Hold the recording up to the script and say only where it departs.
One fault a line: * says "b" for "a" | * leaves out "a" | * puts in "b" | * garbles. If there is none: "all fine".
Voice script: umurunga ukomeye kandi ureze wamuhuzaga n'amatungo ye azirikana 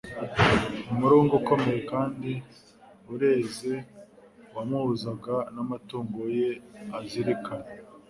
all fine